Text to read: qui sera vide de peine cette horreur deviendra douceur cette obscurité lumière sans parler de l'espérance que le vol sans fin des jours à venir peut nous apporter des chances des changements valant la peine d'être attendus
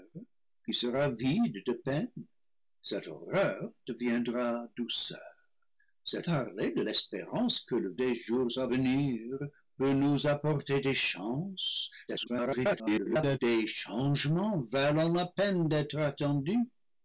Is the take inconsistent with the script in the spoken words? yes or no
yes